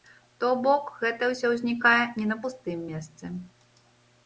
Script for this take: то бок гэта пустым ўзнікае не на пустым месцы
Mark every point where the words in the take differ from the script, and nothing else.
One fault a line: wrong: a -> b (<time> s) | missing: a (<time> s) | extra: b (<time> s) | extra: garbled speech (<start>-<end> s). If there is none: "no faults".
wrong: пустым -> ўсё (1.3 s)